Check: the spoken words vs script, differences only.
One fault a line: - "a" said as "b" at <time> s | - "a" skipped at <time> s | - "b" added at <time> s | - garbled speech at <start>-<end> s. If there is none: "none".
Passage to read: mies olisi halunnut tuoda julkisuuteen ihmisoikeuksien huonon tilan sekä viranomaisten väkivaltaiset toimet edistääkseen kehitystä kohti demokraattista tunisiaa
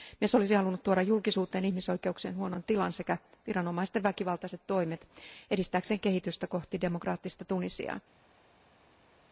none